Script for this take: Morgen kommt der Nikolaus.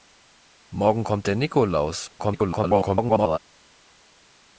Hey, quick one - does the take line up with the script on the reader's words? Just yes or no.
no